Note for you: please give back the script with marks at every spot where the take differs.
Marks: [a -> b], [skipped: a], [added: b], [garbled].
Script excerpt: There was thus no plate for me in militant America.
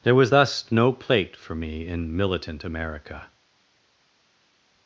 There was thus no plate for me in militant America.